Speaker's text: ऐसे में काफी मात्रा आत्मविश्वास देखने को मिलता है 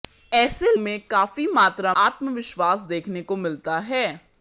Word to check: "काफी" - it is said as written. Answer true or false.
true